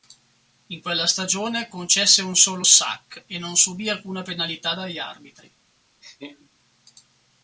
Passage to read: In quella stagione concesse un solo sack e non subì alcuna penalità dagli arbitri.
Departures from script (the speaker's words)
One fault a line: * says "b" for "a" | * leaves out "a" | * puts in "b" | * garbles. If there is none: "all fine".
all fine